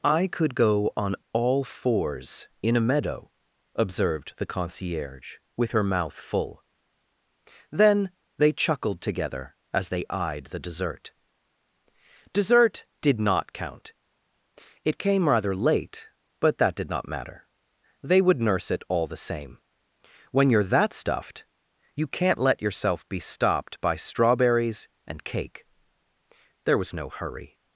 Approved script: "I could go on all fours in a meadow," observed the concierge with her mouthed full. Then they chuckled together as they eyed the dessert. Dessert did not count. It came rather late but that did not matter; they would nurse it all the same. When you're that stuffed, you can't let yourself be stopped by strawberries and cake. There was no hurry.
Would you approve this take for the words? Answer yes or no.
no